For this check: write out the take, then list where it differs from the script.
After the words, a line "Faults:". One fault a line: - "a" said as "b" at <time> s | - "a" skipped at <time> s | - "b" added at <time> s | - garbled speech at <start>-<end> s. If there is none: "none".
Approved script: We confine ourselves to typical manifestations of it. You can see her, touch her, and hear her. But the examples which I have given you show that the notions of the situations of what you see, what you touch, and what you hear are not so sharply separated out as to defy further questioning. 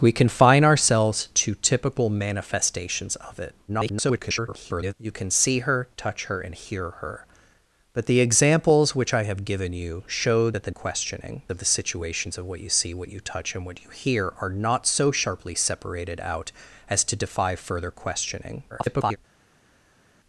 We confine ourselves to typical manifestations of it. [garbled] You can see her, touch her, and hear her. But the examples which I have given you show that the questioning of the situations of what you see, what you touch, and what you hear are not so sharply separated out as to defy further questioning. [garbled]
Faults:
- garbled speech at 3.7-4.9 s
- "notions" said as "questioning" at 10.7 s
- garbled speech at 18.7-19.2 s